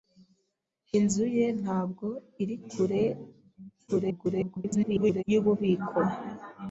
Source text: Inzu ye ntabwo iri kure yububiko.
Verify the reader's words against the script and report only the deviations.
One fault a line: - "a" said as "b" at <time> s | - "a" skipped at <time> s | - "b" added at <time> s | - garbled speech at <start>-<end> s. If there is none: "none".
- garbled speech at 3.9-5.2 s